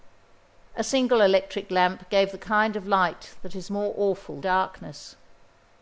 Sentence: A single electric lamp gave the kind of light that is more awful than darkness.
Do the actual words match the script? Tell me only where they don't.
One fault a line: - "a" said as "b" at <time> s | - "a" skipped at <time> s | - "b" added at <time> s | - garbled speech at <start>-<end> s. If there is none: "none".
- "than" skipped at 4.4 s